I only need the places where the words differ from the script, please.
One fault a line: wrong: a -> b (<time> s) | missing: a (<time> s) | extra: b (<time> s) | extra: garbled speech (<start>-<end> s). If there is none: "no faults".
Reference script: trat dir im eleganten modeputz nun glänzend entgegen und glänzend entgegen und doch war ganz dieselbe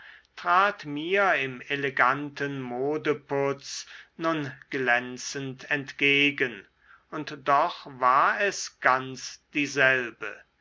wrong: dir -> mir (0.9 s)
missing: glänzend entgegen und (7.4 s)
extra: es (8.4 s)